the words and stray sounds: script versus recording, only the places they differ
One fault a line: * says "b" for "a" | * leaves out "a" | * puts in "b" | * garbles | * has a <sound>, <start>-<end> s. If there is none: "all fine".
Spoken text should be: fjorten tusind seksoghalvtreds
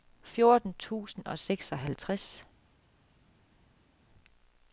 * puts in "og"